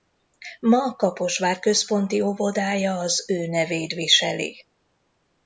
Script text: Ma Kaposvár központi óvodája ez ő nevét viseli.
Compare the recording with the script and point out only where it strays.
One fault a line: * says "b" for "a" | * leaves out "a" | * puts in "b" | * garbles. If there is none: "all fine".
* says "az" for "ez"